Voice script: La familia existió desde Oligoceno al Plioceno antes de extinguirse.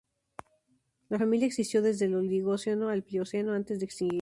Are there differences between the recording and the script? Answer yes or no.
yes